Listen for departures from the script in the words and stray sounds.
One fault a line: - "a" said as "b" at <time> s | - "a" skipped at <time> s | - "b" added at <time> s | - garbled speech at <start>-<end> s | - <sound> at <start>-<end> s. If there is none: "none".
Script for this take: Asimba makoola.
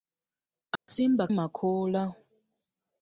- dropout at 0.8-0.9 s